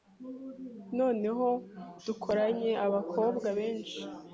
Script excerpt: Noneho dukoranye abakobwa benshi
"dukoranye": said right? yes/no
yes